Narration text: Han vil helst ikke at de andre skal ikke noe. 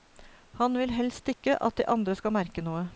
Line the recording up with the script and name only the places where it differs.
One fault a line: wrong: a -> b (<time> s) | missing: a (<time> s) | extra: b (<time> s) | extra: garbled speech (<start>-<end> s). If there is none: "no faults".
wrong: ikke -> merke (2.3 s)